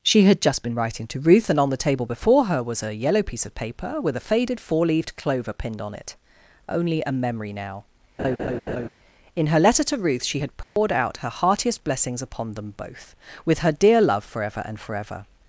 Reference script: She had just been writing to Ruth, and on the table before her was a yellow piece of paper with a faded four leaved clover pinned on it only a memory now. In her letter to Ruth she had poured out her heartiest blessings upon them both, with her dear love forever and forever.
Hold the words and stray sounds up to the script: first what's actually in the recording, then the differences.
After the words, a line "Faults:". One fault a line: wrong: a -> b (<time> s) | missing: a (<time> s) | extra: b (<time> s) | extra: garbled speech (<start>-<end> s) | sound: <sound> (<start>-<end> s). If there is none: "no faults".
She had just been writing to Ruth, and on the table before her was a yellow piece of paper with a faded four leaved clover pinned on it only a memory now. In her letter to Ruth she had poured out her heartiest blessings upon them both, with her dear love forever and forever.
Faults:
sound: laugh (8.2-8.9 s)
sound: dropout (10.6-10.8 s)